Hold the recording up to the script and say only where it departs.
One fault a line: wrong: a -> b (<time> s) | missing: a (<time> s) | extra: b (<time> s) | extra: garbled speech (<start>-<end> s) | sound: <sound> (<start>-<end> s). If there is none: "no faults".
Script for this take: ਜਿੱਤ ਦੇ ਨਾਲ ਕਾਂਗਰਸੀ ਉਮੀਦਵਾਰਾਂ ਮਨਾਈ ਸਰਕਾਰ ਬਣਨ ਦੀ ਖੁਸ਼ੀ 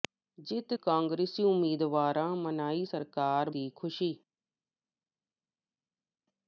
missing: ਦੇ ਨਾਲ (0.7 s)
missing: ਬਣਨ (3.5 s)